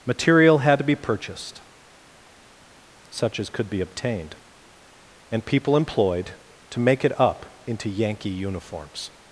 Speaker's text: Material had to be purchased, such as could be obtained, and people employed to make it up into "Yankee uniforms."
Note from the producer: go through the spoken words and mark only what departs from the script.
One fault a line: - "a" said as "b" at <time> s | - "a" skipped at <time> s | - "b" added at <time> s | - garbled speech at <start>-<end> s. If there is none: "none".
none